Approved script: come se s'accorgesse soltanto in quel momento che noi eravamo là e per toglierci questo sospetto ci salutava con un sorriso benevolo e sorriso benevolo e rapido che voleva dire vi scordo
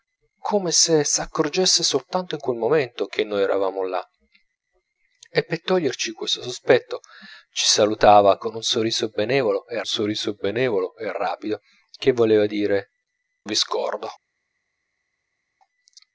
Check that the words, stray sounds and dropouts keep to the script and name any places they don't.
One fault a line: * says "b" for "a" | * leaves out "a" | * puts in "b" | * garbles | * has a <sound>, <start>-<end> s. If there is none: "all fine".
all fine